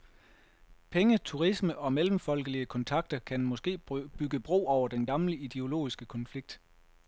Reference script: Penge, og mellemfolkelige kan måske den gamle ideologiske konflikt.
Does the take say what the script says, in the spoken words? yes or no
no